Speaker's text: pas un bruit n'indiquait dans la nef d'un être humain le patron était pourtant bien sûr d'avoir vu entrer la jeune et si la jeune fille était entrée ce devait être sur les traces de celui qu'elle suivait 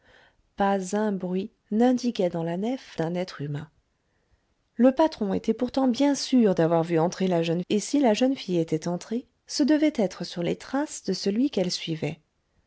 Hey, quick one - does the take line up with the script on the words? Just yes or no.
yes